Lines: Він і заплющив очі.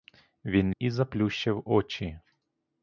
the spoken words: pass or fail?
pass